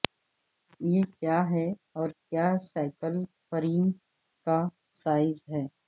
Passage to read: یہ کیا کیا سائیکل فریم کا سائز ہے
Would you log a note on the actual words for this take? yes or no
yes